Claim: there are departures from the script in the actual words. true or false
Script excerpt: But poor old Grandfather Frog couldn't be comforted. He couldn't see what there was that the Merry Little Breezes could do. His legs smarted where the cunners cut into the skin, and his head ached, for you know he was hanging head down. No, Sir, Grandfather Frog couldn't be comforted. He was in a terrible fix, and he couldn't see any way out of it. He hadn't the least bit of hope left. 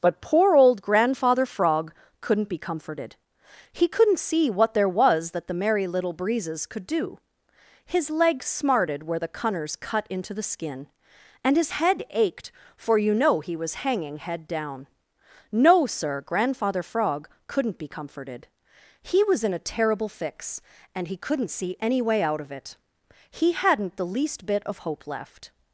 false